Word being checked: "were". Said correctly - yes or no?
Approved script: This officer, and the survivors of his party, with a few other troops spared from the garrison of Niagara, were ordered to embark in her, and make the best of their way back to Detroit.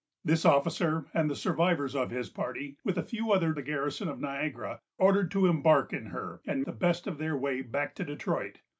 no